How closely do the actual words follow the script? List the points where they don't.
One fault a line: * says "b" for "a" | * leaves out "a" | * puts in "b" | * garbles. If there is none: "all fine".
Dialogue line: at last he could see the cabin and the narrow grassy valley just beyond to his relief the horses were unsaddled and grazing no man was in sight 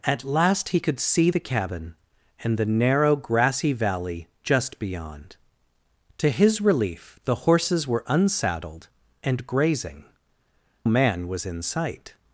* leaves out "no"